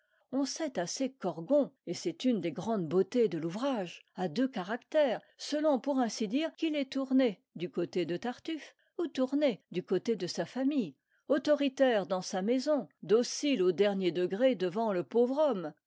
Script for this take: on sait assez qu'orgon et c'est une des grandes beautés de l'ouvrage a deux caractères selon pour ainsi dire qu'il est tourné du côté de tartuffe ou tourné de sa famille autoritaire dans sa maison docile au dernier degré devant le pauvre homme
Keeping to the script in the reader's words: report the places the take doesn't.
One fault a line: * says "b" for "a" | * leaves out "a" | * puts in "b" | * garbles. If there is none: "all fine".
* puts in "du côté"